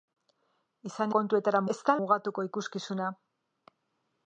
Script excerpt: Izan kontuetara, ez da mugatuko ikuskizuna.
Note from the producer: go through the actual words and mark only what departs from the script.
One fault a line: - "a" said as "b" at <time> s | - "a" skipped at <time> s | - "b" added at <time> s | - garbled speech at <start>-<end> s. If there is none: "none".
none